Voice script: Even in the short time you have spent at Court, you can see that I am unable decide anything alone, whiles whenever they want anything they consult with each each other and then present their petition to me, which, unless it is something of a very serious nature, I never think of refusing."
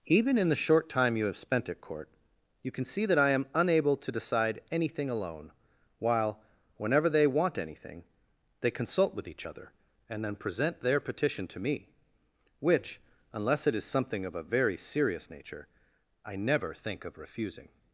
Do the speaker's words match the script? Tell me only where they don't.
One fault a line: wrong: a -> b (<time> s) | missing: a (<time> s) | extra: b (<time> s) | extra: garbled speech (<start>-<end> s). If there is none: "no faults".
extra: to (4.0 s)
wrong: whiles -> while (6.0 s)
missing: each (9.4 s)